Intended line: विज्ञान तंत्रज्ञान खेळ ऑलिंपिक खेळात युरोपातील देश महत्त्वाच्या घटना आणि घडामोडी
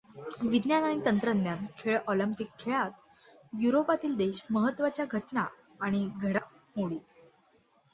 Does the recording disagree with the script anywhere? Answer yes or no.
yes